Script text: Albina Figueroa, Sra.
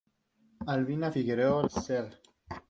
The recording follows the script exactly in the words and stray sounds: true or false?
true